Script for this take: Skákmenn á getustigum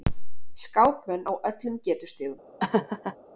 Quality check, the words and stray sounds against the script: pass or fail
fail